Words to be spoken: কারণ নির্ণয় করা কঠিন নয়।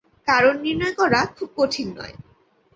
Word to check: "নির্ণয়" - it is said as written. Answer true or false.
true